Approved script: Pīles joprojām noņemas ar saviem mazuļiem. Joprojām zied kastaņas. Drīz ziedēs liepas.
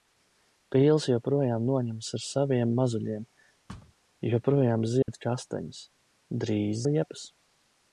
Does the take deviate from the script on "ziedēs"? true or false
true